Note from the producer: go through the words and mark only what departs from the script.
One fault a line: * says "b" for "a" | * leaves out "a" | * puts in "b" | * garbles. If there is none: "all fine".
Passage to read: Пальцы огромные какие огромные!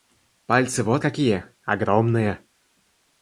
* says "вот" for "огромные"